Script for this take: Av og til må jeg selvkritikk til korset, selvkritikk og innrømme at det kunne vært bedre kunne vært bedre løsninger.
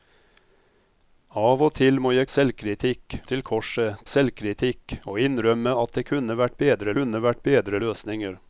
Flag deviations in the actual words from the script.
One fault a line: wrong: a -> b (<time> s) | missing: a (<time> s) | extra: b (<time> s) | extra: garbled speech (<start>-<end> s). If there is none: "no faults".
no faults